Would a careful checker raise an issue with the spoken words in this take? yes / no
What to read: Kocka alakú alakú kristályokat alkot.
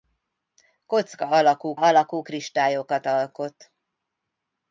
no